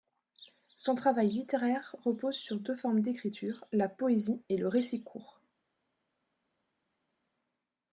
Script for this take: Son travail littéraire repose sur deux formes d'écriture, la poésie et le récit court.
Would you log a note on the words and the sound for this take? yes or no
no